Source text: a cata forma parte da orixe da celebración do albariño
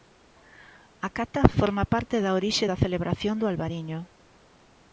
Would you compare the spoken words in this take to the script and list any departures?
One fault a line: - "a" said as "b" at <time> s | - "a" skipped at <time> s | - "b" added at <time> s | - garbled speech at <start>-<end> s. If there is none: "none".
none